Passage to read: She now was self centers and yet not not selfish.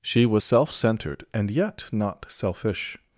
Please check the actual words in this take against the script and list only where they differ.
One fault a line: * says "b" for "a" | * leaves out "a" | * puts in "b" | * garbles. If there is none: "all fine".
* leaves out "now"
* says "centered" for "centers"
* leaves out "not"